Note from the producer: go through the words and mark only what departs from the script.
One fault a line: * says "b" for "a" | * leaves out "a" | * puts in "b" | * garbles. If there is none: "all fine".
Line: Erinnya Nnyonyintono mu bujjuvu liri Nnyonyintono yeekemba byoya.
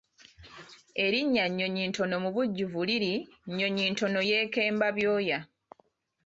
all fine